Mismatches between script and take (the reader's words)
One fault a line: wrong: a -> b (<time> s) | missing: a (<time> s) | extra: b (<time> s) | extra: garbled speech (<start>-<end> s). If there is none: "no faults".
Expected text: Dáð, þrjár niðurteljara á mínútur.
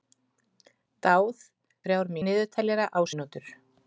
no faults